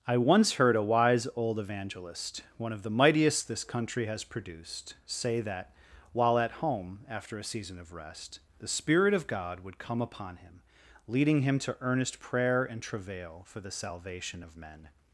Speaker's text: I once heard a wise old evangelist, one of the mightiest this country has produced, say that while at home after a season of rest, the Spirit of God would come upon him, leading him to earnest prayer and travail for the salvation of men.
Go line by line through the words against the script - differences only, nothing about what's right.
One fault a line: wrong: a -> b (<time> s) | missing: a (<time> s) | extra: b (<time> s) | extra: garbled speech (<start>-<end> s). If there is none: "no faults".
no faults